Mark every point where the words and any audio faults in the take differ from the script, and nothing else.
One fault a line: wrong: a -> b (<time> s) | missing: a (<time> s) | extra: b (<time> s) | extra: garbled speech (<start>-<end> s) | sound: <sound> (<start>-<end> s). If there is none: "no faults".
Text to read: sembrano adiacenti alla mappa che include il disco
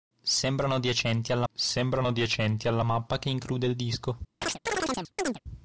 extra: sembrano adiacenti alla (1.5 s)
sound: chirp (4.4-5.4 s)